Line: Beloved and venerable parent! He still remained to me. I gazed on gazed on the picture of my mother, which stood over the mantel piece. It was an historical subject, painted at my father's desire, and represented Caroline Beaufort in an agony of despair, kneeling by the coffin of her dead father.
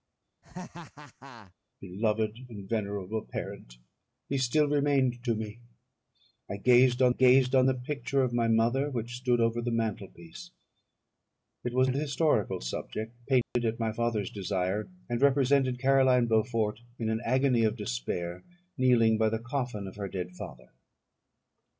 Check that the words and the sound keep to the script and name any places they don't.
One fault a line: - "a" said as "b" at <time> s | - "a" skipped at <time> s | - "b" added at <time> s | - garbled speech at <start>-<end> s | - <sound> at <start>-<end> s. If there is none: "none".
- laugh at 0.4-1.5 s
- dropout at 13.4-13.6 s